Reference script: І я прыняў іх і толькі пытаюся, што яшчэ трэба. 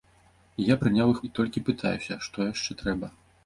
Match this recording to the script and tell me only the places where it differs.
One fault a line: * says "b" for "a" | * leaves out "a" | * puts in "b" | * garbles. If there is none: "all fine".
all fine